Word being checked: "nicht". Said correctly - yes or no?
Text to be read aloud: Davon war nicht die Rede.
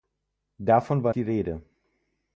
no